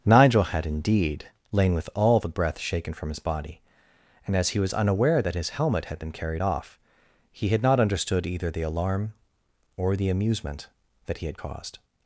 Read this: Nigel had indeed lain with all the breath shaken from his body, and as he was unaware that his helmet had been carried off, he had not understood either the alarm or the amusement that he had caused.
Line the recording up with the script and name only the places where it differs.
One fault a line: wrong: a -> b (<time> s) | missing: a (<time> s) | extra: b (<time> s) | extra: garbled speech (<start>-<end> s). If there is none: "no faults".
no faults